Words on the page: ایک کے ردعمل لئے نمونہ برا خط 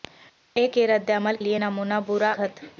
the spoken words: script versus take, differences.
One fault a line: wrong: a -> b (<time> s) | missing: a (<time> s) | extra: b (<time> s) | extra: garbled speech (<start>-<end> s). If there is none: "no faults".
no faults